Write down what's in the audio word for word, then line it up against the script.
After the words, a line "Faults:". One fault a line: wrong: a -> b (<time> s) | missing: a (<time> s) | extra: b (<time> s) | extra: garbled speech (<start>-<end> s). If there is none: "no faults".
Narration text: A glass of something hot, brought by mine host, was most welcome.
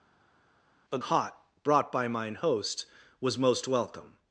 A hot, brought by mine host, was most welcome.
Faults:
missing: glass of something (1.0 s)